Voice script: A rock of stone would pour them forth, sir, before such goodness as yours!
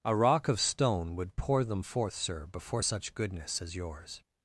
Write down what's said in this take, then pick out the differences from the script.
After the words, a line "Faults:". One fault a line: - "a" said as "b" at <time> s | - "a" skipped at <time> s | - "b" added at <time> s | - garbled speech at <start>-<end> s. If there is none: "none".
A rock of stone would pour them forth, sir, before such goodness as yours!
Faults:
none